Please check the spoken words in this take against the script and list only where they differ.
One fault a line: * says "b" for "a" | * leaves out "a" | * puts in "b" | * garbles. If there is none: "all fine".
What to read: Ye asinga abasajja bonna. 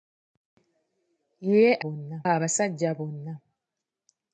* says "bonna" for "asinga"